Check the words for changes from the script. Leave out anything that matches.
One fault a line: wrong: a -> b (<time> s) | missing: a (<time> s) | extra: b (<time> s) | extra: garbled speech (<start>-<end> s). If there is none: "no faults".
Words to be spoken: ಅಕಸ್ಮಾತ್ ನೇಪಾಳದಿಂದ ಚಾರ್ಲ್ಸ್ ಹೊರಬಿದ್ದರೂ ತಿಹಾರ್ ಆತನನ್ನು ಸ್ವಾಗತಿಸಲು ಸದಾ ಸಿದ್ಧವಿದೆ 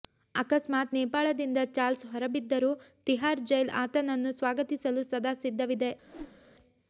extra: ಜೈಲ್ (3.5 s)